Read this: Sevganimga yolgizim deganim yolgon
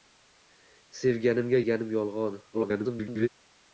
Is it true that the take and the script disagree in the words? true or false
true